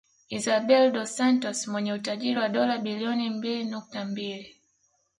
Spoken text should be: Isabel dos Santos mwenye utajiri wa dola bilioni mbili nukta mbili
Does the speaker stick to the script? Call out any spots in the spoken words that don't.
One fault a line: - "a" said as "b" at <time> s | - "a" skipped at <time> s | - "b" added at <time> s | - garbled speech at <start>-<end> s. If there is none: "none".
none